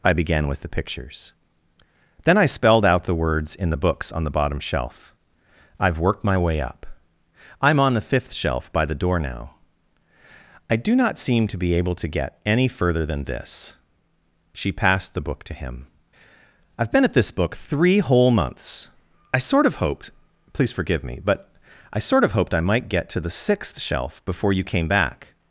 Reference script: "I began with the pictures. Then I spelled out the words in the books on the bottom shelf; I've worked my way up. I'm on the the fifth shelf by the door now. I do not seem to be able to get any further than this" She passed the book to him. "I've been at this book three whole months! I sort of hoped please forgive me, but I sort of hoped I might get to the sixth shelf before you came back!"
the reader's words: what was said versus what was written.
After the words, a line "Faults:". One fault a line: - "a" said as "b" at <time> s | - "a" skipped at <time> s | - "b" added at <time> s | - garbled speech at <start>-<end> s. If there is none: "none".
"I began with the pictures. Then I spelled out the words in the books on the bottom shelf; I've worked my way up. I'm on the fifth shelf by the door now. I do not seem to be able to get any further than this" She passed the book to him. "I've been at this book three whole months! I sort of hoped please forgive me, but I sort of hoped I might get to the sixth shelf before you came back!"
Faults:
- "the" skipped at 8.1 s